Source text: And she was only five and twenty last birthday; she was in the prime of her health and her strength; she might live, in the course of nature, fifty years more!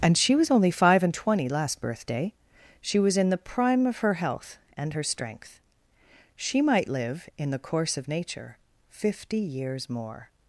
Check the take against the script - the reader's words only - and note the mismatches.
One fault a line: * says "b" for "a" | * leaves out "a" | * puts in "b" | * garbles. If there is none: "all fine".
all fine